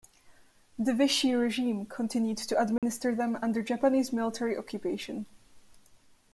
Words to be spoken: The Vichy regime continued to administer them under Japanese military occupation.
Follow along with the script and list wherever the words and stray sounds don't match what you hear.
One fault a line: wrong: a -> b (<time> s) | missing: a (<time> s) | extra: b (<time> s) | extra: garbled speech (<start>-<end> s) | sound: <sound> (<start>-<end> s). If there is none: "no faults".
sound: dropout (2.8-2.8 s)